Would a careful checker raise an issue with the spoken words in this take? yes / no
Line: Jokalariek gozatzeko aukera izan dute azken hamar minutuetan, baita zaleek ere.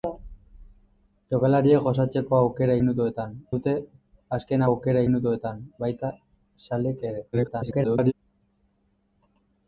yes